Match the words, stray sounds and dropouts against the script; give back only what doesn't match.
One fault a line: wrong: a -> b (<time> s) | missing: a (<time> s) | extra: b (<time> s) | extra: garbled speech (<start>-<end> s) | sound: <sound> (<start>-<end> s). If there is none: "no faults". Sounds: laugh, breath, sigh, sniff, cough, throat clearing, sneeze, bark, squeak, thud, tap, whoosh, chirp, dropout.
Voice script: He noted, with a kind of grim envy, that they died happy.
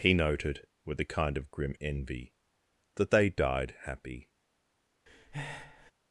sound: breath (5.1-5.9 s)